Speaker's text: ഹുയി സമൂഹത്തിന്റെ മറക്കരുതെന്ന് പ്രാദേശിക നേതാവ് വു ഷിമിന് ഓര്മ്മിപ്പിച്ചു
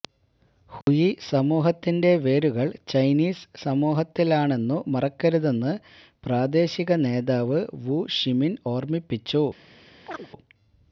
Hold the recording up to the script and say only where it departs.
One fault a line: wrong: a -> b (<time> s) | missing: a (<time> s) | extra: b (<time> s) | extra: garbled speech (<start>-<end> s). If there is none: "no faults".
extra: വേരുകള് ചൈനീസ് സമൂഹത്തിലാണെന്നു (2.2 s)